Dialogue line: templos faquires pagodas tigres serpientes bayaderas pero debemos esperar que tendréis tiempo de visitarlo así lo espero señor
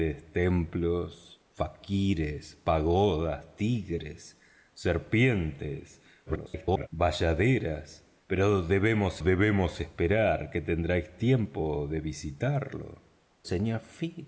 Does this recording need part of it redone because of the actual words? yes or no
yes